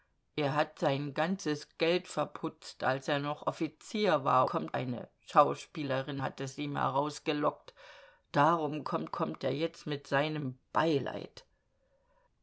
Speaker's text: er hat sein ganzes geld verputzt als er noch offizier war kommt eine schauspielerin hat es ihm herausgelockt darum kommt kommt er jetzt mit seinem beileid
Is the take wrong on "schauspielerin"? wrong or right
right